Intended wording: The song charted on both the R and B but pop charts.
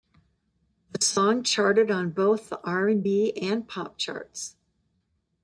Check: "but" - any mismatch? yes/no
yes